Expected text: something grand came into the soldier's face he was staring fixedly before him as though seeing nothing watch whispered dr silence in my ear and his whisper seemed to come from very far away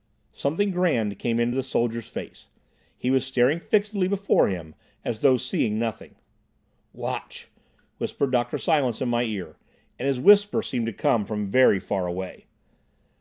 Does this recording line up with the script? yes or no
yes